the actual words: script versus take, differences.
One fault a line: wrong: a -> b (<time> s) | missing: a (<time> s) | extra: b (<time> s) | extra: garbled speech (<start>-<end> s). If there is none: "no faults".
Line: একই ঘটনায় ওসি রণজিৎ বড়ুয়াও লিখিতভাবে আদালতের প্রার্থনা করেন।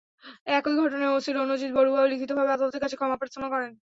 extra: কাছে ক্ষমা (2.8 s)